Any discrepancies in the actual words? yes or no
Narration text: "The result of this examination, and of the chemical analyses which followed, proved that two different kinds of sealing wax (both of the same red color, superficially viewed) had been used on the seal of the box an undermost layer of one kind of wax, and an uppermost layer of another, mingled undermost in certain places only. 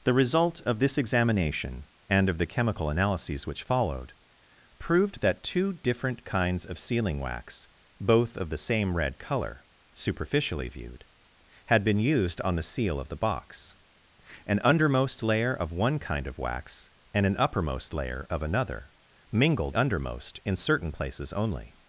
no